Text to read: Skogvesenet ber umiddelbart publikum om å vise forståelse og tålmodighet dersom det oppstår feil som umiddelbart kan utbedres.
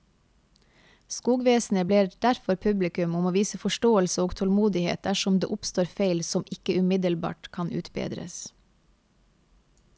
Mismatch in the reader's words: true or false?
true